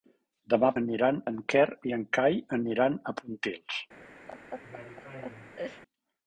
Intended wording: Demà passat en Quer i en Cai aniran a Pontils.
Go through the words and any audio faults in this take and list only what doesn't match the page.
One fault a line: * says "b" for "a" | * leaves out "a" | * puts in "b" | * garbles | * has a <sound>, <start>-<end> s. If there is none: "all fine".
* says "aniran" for "passat"
* has a laugh, 4.3-5.8 s